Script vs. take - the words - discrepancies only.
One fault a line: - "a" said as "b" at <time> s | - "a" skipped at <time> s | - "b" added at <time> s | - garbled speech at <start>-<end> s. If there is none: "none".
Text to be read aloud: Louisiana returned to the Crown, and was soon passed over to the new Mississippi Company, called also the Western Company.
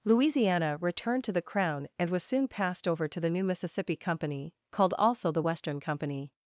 none